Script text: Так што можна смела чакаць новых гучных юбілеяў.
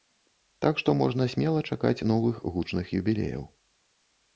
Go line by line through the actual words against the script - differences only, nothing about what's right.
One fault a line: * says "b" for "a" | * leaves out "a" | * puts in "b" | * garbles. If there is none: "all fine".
all fine